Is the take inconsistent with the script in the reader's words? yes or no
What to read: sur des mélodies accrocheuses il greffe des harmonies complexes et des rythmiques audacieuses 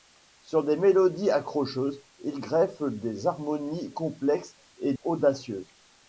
yes